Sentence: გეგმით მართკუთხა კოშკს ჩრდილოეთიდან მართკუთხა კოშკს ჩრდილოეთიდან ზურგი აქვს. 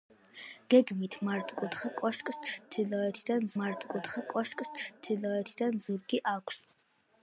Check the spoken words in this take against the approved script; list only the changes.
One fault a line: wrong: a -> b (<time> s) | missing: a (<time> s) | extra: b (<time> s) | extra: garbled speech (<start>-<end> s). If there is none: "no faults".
no faults